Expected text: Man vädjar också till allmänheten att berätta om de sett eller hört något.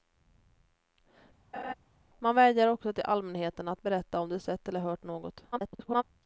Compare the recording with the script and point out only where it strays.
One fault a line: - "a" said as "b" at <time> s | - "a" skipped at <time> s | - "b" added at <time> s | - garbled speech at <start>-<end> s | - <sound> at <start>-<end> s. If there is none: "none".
- laugh at 1.5-1.7 s
- garbled speech at 5.5-6.0 s